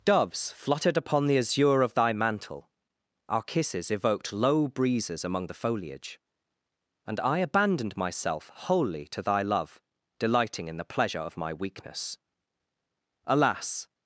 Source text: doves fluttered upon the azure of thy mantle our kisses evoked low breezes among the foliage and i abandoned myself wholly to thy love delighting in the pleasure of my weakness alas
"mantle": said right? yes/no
yes